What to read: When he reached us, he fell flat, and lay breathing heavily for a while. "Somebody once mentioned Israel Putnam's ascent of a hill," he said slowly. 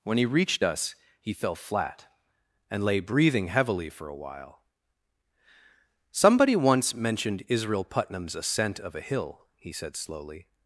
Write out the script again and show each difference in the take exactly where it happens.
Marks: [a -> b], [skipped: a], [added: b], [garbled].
When he reached us, he fell flat, and lay breathing heavily for a while. "Somebody once mentioned Israel Putnam's ascent of a hill," he said slowly.